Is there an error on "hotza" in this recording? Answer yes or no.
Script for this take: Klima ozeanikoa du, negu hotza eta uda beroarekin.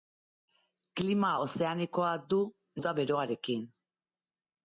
yes